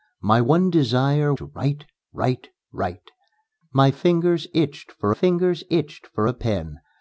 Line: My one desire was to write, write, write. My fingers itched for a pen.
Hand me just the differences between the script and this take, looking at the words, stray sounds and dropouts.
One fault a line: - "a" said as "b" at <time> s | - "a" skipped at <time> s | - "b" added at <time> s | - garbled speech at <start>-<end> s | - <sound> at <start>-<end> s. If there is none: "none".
- "was" skipped at 1.3 s
- "fingers itched for" added at 5.1 s